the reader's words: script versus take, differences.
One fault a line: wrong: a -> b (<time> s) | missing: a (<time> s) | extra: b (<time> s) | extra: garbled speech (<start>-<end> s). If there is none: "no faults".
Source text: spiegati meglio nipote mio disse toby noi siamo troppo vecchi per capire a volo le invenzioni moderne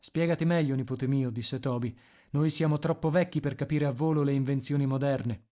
no faults